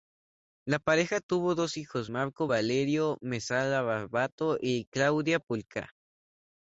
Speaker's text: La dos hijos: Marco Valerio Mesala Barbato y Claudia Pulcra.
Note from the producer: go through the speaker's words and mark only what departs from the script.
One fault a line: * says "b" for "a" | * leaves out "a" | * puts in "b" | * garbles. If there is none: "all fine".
* puts in "pareja tuvo"